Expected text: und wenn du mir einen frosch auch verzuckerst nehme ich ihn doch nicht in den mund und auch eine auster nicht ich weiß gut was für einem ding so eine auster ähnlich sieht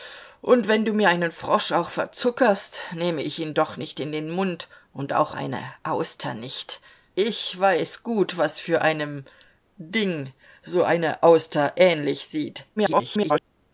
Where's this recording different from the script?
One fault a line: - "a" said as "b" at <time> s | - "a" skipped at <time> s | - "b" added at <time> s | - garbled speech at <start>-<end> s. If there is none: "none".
- garbled speech at 12.8-13.4 s